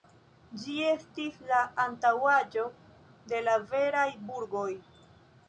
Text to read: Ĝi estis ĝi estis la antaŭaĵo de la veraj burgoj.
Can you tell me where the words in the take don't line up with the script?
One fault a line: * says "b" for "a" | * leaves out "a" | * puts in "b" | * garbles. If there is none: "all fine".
* leaves out "ĝi estis"